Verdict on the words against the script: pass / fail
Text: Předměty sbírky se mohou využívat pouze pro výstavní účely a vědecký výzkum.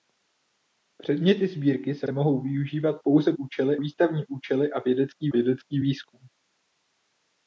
fail